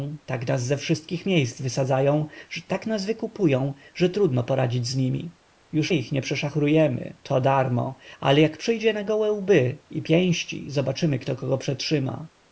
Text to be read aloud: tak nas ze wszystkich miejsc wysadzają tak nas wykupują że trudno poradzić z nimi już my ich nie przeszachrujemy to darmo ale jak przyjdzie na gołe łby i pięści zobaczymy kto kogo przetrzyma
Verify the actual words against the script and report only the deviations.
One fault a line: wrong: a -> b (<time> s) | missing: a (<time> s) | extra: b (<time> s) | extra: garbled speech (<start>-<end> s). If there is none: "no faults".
missing: my (5.9 s)